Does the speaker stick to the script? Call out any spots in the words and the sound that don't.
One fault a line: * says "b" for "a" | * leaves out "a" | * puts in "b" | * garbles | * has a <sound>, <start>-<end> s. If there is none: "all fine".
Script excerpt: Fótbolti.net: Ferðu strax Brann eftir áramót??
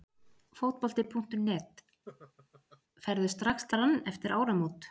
* has a laugh, 2.1-2.8 s